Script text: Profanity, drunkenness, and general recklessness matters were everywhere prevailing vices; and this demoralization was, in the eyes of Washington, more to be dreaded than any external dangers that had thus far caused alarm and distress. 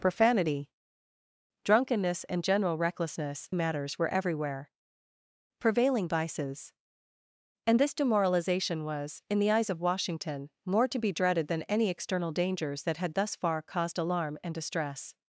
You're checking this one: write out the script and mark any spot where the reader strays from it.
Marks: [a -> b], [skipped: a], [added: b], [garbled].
Profanity, drunkenness, and general recklessness matters were everywhere prevailing vices; and this demoralization was, in the eyes of Washington, more to be dreaded than any external dangers that had thus far caused alarm and distress.